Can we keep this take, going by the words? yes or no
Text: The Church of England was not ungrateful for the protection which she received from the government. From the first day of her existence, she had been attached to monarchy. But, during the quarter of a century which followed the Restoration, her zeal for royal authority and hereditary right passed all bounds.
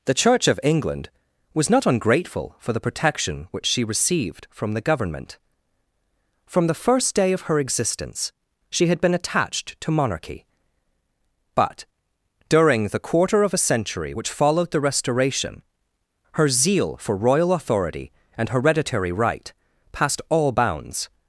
yes